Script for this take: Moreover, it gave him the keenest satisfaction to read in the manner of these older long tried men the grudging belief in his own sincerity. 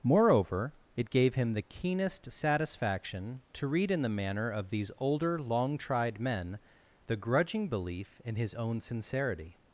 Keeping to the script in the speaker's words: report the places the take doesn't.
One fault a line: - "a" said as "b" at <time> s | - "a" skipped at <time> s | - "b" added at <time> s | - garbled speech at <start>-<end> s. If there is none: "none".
none